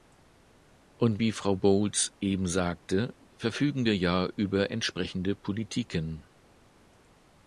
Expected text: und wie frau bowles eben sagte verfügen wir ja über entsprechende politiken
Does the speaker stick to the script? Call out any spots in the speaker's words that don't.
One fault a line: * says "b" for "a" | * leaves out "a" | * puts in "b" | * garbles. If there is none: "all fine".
all fine